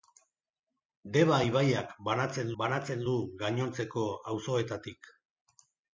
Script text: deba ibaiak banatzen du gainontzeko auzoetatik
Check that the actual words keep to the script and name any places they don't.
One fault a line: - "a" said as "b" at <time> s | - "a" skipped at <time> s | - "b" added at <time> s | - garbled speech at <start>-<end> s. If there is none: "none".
- "banatzen" added at 2.6 s